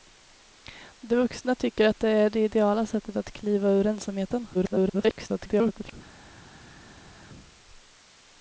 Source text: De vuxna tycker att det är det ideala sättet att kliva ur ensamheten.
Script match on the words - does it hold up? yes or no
no